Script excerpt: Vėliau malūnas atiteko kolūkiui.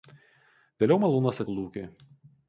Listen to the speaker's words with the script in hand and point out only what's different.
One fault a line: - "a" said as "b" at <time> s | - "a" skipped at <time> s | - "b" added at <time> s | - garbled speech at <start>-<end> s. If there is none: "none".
- "atiteko" skipped at 1.4 s